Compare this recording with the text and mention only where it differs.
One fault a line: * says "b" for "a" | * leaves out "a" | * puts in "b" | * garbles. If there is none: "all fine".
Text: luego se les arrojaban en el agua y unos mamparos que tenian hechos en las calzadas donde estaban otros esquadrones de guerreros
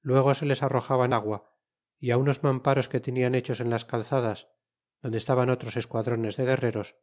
* leaves out "en el"